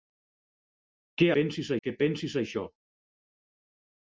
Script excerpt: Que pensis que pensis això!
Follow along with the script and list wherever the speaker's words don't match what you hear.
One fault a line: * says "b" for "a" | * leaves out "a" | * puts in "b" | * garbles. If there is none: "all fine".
all fine